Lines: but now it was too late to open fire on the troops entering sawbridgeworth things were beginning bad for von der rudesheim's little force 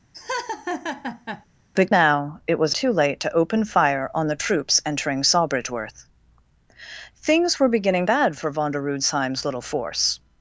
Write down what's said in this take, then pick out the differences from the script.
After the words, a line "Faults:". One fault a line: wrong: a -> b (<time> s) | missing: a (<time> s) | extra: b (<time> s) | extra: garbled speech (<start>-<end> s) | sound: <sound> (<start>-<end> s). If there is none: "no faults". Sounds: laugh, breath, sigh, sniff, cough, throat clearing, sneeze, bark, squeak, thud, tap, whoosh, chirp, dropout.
but now it was too late to open fire on the troops entering sawbridgeworth things were beginning bad for von der rudesheim's little force
Faults:
sound: laugh (0.1-1.5 s)